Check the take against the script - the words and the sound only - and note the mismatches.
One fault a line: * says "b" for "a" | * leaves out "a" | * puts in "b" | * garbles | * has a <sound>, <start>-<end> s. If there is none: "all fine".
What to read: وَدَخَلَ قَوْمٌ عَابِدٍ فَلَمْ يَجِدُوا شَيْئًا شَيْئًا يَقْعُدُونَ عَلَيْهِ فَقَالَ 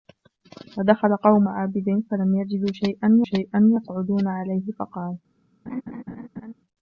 * has a laugh, 5.7-6.5 s